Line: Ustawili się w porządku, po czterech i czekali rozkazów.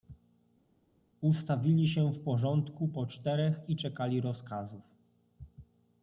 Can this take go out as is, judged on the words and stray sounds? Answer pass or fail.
pass